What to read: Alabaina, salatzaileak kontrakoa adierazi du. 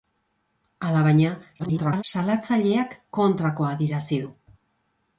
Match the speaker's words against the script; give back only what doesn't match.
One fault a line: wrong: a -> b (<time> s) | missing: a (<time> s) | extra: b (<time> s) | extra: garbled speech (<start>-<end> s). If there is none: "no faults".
extra: garbled speech (1.6-2.0 s)